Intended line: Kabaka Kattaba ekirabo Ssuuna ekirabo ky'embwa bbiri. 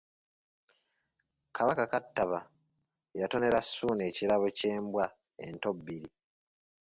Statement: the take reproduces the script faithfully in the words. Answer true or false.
false